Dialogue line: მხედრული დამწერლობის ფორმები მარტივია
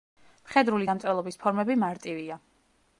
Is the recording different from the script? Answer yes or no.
no